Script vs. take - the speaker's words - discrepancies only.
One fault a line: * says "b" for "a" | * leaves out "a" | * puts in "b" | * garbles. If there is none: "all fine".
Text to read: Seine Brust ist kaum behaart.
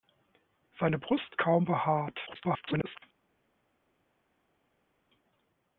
* leaves out "ist"
* garbles